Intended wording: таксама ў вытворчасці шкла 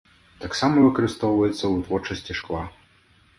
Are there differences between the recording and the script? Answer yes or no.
yes